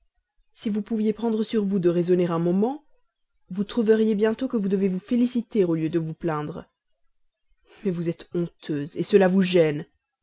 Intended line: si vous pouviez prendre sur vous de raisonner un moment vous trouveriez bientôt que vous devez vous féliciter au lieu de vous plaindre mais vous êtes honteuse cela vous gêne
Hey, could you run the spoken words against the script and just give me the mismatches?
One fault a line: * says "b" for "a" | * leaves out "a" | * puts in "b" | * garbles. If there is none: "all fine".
all fine